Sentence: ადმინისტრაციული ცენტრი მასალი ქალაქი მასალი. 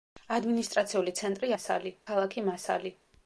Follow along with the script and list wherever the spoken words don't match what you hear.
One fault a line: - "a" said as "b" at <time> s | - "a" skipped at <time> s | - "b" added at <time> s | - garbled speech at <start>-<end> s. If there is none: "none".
none